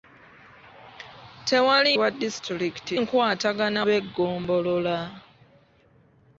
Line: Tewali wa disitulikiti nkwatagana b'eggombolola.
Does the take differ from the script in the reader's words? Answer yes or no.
no